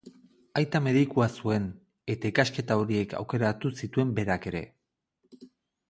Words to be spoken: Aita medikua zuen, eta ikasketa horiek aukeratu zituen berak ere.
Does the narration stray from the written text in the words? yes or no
no